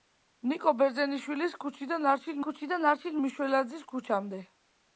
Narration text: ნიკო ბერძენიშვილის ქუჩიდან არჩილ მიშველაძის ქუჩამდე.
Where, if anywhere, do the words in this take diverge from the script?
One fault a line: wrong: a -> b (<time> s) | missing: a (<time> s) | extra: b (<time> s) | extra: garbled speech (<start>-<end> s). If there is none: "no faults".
extra: ქუჩიდან არჩილ (2.5 s)